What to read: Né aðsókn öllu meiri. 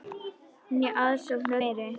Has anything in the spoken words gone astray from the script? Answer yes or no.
yes